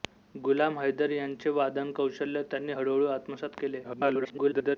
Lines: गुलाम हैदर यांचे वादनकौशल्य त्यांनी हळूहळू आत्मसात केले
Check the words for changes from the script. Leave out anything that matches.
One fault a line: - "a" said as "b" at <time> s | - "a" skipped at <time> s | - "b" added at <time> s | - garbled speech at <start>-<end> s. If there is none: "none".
- garbled speech at 3.8-4.8 s